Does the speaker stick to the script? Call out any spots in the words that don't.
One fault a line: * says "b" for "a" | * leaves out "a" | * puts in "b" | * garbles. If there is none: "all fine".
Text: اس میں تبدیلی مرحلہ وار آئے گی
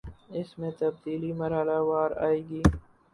all fine